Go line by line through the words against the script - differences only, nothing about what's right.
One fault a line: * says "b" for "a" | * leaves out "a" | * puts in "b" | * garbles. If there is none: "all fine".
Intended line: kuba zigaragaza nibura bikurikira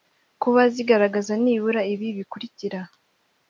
* puts in "ibi"